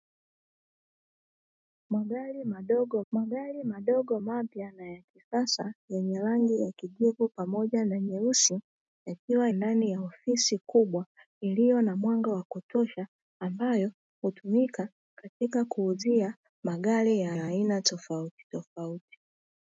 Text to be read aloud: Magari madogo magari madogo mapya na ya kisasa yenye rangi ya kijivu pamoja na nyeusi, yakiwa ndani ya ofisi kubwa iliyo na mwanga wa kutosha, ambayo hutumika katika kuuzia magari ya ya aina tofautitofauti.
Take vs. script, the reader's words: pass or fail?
pass